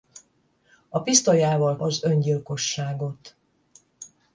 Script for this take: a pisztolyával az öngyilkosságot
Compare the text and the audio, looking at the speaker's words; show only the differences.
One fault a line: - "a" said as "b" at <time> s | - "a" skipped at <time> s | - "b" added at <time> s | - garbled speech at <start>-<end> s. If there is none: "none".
none